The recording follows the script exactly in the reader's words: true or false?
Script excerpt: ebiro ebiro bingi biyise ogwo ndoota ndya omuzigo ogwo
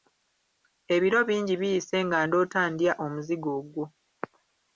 false